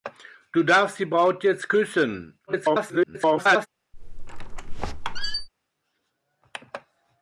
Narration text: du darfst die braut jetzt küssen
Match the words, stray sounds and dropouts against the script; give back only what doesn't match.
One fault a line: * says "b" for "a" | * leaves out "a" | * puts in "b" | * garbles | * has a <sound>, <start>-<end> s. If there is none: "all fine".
* garbles
* has a squeak, 3.9-5.5 s